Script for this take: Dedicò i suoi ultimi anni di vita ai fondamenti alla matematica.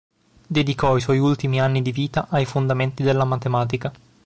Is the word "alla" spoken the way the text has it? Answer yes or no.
no